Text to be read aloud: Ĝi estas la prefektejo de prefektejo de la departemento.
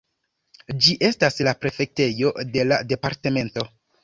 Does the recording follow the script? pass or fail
fail